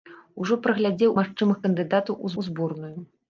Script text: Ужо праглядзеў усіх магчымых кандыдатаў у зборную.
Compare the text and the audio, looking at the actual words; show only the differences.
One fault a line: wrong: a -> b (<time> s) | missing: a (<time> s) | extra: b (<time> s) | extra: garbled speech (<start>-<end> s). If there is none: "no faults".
missing: усіх (1.1 s)
extra: у (2.4 s)